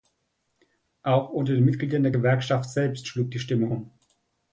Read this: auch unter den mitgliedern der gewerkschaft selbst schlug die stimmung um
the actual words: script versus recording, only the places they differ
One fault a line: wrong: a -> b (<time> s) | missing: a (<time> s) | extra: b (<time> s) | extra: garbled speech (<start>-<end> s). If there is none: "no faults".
no faults